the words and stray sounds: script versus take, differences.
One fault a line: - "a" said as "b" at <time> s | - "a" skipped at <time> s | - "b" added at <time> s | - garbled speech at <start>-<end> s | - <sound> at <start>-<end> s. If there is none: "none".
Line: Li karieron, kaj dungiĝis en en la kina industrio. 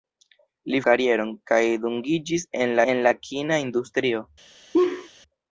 - laugh at 4.7-5.1 s